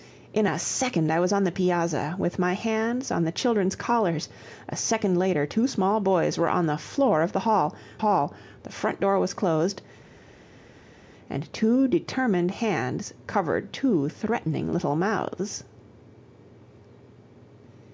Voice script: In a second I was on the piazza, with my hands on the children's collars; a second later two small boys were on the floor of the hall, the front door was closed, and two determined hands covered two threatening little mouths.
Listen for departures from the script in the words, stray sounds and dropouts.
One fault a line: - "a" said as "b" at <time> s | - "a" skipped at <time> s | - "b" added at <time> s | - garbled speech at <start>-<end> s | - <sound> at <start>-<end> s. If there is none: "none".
- "hall" added at 8.0 s